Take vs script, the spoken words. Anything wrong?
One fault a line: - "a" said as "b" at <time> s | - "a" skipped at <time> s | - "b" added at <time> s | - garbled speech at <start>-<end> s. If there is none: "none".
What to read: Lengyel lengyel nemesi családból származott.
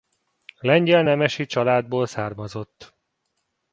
- "lengyel" skipped at 1.0 s